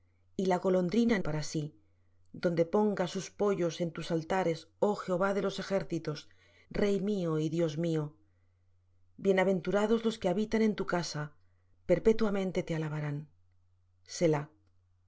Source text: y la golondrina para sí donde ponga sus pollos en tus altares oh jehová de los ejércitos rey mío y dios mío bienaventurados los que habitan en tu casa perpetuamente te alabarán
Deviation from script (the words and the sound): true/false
false